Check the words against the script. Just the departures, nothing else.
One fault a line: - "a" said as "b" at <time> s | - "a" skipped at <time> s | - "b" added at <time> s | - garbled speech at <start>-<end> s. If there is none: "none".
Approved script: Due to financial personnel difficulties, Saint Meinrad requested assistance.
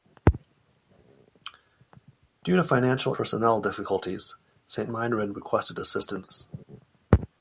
none